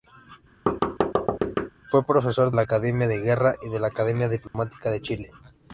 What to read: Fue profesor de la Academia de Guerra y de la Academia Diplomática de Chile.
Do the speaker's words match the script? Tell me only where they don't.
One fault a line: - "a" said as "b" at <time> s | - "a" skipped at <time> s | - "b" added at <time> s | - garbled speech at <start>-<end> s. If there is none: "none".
- "de" skipped at 2.5 s